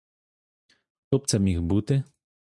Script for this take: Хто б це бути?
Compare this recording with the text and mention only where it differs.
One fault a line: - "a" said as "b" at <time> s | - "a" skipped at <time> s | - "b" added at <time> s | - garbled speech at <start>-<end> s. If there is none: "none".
- "міг" added at 1.4 s